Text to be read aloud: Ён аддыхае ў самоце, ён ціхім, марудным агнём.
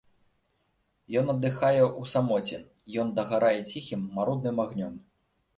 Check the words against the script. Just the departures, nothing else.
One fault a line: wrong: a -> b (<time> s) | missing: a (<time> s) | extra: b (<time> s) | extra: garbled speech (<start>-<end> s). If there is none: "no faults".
extra: дагарае (3.2 s)